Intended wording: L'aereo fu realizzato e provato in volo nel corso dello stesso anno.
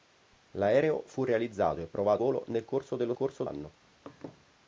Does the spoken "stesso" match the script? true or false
false